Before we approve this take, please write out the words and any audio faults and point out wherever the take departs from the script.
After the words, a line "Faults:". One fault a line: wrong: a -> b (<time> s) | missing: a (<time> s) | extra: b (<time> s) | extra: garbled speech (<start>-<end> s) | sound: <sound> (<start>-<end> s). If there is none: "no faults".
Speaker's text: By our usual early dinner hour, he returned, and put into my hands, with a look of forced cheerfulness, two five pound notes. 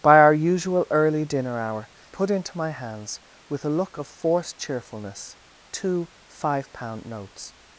By our usual early dinner hour, put into my hands, with a look of forced cheerfulness, two five pound notes.
Faults:
missing: he returned and (1.9 s)